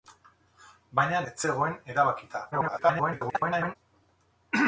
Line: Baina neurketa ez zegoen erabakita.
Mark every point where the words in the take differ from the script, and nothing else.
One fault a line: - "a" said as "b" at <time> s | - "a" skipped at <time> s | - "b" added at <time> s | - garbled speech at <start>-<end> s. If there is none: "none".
- "neurketa" skipped at 1.2 s
- garbled speech at 2.5-3.8 s